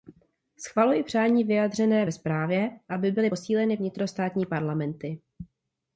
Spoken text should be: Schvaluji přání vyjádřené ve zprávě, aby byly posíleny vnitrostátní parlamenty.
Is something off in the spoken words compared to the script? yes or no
no